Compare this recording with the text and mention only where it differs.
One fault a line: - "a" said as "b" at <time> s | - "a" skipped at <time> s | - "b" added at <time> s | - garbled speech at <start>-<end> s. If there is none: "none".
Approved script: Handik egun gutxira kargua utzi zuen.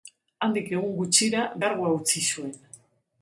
none